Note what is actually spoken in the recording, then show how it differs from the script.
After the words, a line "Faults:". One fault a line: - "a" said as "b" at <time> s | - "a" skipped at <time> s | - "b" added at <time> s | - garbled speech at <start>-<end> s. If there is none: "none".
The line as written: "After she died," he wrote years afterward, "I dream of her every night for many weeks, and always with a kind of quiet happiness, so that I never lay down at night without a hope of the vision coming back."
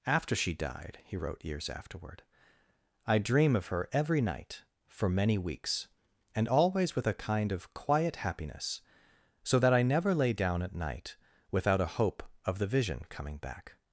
"After she died," he wrote years afterward, "I dream of her every night for many weeks, and always with a kind of quiet happiness, so that I never lay down at night without a hope of the vision coming back."
Faults:
none